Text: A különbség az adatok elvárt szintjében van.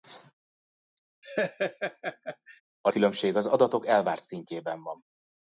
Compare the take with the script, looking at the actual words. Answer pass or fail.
pass